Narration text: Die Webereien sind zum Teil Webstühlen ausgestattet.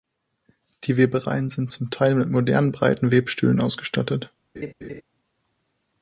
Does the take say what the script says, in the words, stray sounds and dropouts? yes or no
no